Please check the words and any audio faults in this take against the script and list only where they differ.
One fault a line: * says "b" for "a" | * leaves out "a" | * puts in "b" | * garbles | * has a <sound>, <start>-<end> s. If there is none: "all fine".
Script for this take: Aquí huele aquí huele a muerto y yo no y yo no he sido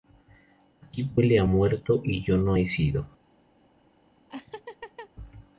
* leaves out "aquí huele"
* leaves out "y yo no"
* has a laugh, 4.3-5.1 s